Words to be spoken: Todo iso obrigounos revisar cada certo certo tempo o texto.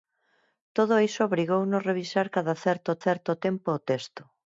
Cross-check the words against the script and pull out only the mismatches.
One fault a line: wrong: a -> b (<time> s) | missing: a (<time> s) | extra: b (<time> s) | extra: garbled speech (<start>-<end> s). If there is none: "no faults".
no faults